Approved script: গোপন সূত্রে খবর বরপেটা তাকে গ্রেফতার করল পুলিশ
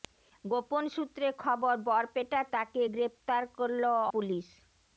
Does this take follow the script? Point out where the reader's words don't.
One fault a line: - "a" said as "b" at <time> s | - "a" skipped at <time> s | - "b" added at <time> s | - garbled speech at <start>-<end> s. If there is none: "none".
none